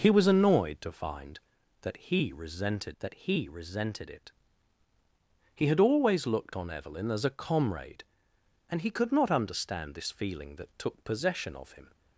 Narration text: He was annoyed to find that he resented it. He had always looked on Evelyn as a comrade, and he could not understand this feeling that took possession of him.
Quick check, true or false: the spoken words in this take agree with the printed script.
false